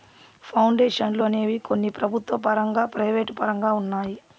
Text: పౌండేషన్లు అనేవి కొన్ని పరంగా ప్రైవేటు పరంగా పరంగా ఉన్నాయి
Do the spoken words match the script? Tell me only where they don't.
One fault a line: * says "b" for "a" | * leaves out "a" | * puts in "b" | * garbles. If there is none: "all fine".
* puts in "ప్రభుత్వ"
* leaves out "పరంగా"